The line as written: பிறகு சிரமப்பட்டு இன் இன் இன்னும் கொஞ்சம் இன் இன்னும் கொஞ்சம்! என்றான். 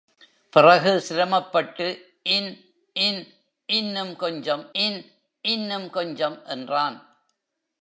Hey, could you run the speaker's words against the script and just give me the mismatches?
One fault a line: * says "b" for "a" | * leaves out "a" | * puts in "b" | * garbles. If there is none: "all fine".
all fine